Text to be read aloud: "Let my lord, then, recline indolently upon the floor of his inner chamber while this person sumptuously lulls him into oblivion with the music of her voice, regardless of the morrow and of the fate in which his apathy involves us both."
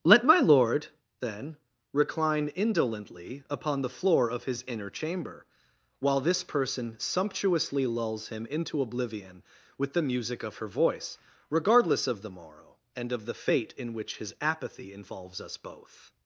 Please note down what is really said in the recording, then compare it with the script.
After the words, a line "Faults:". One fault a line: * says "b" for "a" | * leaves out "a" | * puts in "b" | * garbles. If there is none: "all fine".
"Let my lord, then, recline indolently upon the floor of his inner chamber while this person sumptuously lulls him into oblivion with the music of her voice, regardless of the morrow and of the fate in which his apathy involves us both."
Faults:
all fine